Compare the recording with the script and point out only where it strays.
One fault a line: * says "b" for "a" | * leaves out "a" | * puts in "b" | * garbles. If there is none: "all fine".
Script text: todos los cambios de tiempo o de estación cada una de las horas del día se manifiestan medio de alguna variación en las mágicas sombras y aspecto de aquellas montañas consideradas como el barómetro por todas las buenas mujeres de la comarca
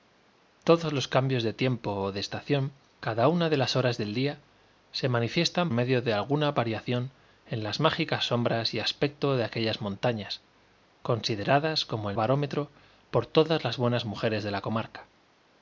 all fine